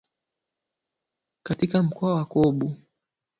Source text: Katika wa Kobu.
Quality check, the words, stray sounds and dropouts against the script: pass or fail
fail